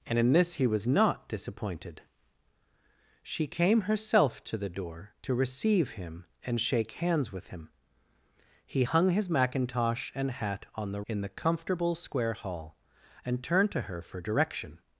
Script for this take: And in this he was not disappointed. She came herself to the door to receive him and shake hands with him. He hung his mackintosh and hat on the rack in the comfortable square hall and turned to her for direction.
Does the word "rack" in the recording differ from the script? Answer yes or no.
yes